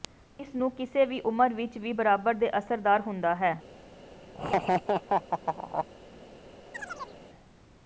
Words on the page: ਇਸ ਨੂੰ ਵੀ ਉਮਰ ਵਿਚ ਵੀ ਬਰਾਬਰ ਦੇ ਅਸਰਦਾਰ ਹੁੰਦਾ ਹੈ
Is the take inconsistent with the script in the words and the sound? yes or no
yes